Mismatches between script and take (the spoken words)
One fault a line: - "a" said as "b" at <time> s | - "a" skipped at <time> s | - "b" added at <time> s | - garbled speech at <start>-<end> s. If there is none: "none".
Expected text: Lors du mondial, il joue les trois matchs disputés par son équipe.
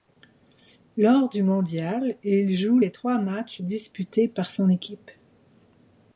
none